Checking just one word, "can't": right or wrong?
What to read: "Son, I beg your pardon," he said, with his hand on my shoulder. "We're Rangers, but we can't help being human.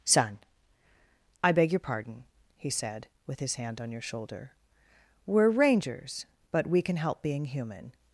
wrong